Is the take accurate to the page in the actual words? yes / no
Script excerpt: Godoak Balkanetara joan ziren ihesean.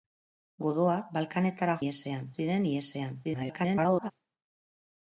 no